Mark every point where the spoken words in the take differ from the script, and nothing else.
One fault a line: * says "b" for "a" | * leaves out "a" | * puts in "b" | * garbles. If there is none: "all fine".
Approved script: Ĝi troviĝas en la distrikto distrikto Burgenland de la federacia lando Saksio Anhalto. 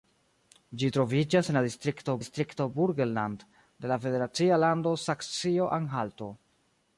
all fine